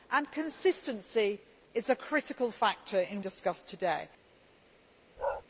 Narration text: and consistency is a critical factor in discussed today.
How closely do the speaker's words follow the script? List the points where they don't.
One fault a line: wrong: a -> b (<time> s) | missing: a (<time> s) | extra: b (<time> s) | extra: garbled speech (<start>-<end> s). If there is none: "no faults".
no faults